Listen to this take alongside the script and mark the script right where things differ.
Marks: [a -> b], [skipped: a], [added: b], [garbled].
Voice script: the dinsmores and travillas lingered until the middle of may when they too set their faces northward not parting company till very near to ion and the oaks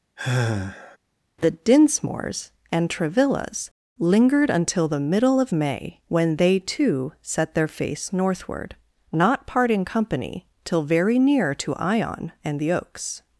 the dinsmores and travillas lingered until the middle of may when they too set their [faces -> face] northward not parting company till very near to ion and the oaks